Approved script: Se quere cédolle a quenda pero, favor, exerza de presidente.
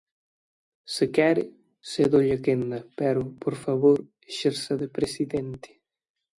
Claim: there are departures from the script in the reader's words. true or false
true